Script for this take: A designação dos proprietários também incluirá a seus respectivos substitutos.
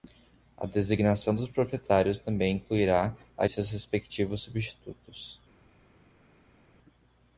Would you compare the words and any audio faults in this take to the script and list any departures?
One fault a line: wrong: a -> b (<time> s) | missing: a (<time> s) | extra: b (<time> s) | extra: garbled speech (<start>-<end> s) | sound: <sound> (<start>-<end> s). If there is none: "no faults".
no faults